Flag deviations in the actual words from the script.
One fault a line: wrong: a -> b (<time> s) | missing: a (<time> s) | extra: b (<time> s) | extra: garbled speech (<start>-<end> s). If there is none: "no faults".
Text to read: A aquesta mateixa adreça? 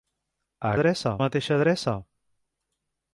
wrong: aquesta -> adreça (0.8 s)